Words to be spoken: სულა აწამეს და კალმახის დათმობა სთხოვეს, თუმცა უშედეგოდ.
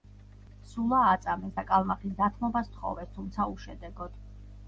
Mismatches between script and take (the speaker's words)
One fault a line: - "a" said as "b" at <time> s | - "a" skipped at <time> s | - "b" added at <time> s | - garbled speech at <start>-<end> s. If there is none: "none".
none